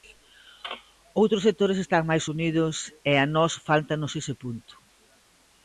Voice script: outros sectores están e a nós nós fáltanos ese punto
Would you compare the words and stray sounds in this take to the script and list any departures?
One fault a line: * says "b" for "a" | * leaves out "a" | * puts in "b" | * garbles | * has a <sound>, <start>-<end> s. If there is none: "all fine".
* puts in "máis unidos"
* leaves out "nós"